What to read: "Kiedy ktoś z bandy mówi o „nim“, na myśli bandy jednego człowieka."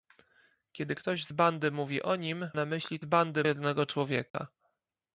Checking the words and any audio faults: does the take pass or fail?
fail